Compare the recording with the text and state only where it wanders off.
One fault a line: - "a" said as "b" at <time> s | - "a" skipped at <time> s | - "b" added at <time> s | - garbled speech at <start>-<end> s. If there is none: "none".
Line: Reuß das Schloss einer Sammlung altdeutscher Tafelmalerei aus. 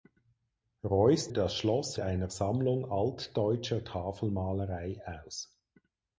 none